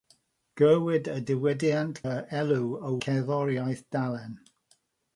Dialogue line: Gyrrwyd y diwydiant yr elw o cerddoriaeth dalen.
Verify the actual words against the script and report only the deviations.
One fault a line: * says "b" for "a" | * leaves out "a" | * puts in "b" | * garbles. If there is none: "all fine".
all fine